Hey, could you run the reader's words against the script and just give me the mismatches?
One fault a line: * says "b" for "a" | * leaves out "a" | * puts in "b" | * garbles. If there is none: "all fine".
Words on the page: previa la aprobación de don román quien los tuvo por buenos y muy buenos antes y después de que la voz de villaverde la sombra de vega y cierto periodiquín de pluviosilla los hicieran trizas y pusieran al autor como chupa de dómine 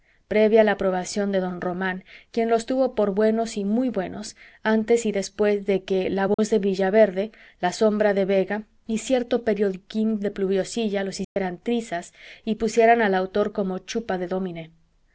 all fine